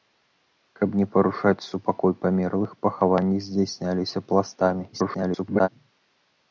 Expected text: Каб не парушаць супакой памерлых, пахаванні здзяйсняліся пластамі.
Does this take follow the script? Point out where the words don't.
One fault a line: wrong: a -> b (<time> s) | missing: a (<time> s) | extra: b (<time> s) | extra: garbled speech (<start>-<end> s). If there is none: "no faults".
extra: garbled speech (4.9-5.7 s)